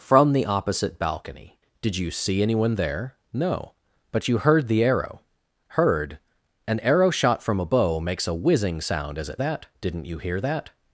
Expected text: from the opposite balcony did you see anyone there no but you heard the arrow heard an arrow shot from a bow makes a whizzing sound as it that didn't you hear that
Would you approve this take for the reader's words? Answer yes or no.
yes